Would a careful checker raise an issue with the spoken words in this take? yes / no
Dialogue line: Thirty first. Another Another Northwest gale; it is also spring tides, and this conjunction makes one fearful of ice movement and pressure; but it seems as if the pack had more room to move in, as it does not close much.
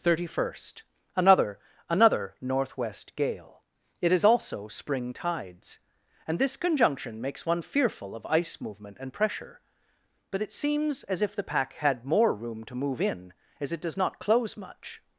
no